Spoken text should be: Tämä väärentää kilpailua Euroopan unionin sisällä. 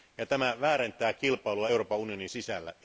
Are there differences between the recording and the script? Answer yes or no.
no